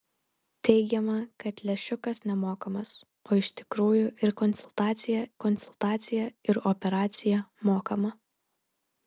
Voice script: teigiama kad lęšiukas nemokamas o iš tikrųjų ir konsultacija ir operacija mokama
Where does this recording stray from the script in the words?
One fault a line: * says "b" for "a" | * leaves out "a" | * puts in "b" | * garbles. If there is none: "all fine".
* puts in "konsultacija"